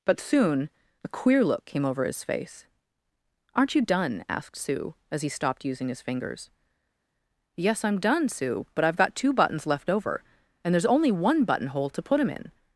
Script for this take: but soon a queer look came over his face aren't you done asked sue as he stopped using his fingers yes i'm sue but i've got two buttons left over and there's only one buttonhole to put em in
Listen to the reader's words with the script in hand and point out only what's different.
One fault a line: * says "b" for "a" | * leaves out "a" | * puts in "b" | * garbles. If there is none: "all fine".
* puts in "done"